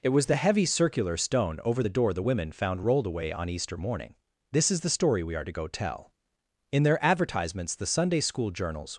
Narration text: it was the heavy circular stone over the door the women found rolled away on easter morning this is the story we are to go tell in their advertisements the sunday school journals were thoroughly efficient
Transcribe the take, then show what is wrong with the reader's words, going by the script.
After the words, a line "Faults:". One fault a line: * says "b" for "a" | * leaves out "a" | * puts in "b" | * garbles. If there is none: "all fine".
it was the heavy circular stone over the door the women found rolled away on easter morning this is the story we are to go tell in their advertisements the sunday school journals
Faults:
* leaves out "were thoroughly efficient"